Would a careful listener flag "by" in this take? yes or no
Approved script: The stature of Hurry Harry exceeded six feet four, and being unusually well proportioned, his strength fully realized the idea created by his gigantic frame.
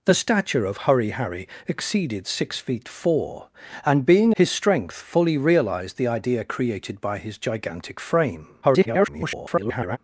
no